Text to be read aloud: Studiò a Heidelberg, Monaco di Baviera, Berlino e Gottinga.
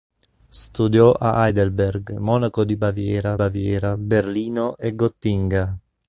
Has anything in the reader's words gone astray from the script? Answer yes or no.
yes